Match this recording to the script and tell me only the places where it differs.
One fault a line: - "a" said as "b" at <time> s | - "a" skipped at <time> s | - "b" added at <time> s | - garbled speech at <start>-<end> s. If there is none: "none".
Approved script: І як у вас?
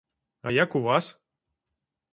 - "І" said as "А" at 0.4 s